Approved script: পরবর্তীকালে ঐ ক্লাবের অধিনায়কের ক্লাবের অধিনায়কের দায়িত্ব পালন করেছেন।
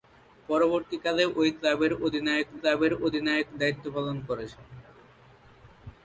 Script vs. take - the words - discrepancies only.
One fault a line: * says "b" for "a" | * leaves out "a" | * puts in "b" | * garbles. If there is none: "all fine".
all fine